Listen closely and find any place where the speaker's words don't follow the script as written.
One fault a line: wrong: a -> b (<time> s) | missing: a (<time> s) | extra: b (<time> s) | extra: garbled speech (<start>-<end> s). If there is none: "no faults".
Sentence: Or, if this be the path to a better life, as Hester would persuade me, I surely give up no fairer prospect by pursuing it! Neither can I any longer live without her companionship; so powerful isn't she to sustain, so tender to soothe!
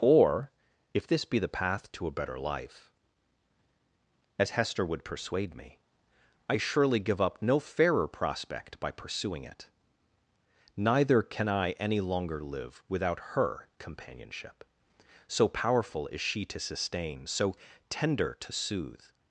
wrong: isn't -> is (16.1 s)